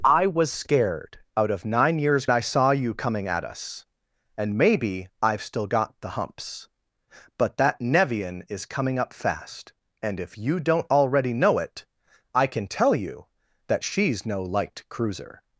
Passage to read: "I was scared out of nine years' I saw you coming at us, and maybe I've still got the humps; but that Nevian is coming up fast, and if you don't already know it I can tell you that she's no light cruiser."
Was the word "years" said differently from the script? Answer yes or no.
no